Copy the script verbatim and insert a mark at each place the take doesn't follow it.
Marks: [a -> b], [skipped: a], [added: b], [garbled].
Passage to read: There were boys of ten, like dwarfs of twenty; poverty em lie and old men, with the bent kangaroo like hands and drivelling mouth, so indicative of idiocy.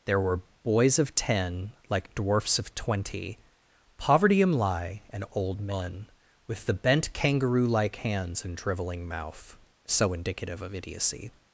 There were boys of ten, like dwarfs of twenty; poverty em lie and old men, with the bent kangaroo like hands and drivelling mouth, so indicative of idiocy.